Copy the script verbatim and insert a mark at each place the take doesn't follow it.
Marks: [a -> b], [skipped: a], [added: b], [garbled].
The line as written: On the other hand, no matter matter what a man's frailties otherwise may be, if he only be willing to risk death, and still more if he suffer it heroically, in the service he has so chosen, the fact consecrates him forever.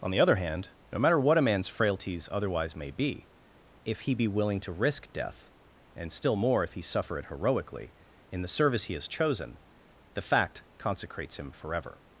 On the other hand, no matter [skipped: matter] what a man's frailties otherwise may be, if he [skipped: only] be willing to risk death, and still more if he suffer it heroically, in the service he has [skipped: so] chosen, the fact consecrates him forever.